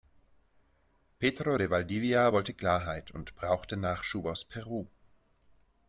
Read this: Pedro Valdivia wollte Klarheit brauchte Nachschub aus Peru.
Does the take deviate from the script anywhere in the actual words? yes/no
yes